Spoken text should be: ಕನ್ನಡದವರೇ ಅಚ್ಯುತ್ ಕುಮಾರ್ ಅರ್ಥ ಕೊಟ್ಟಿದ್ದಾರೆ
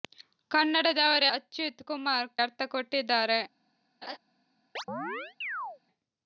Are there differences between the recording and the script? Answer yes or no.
no